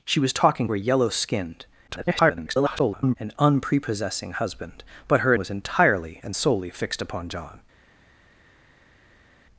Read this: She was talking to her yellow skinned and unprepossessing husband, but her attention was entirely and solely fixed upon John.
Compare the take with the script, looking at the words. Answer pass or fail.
fail